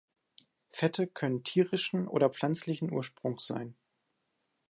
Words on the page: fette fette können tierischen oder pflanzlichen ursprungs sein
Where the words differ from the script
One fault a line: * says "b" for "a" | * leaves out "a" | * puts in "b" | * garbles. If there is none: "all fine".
* leaves out "fette"